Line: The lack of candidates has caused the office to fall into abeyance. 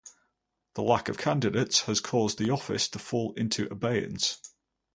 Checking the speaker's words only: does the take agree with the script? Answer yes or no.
yes